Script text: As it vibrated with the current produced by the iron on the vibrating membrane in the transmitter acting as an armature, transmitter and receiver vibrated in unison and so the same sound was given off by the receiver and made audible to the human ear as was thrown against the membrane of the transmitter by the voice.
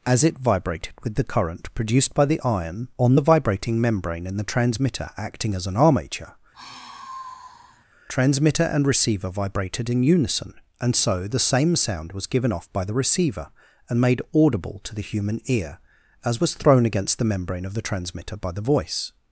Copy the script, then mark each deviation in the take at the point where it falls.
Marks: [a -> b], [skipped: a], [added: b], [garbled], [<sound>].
As it vibrated with the current produced by the iron on the vibrating membrane in the transmitter acting as an armature, [sigh] transmitter and receiver vibrated in unison and so the same sound was given off by the receiver and made audible to the human ear as was thrown against the membrane of the transmitter by the voice.